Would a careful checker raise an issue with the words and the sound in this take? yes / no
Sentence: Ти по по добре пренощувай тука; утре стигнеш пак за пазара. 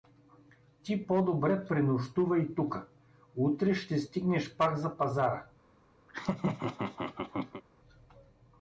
yes